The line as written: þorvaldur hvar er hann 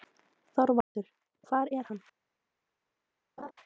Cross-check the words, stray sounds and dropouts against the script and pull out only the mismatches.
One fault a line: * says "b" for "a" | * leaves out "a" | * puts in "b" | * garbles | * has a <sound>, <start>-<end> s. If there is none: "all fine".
* has a dropout, 0.8-1.0 s
* has a laugh, 3.4-3.5 s